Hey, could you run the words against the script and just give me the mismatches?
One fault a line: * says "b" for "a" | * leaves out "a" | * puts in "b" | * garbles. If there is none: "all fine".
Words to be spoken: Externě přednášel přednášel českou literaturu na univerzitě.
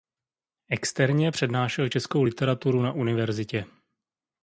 * leaves out "přednášel"